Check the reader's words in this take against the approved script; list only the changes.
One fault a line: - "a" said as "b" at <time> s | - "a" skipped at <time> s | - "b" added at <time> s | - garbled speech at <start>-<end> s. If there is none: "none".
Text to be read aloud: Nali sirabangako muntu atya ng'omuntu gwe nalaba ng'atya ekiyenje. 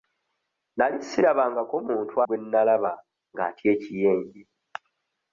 - "atya ng'omuntu" skipped at 2.1 s